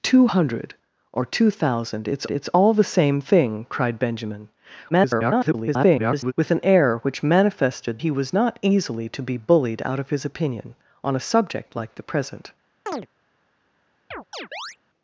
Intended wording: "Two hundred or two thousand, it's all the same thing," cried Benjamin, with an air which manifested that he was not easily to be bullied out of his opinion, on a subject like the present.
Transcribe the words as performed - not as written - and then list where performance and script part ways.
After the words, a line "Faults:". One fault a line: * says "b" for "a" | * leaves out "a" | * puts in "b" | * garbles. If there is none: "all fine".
"Two hundred or two thousand, it's it's all the same thing," cried Benjamin, [garbled] with an air which manifested he was not easily to be bullied out of his opinion, on a subject like the present.
Faults:
* puts in "it's"
* garbles
* leaves out "that"